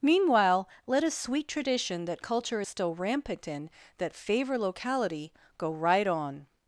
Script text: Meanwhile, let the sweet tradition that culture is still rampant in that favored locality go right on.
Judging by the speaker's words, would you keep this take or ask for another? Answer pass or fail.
fail